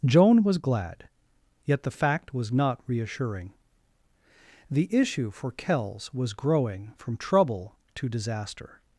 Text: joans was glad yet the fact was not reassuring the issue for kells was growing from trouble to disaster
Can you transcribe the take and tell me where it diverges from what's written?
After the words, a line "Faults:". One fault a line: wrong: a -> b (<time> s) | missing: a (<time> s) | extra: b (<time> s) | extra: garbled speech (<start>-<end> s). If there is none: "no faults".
joan was glad yet the fact was not reassuring the issue for kells was growing from trouble to disaster
Faults:
wrong: joans -> joan (0.0 s)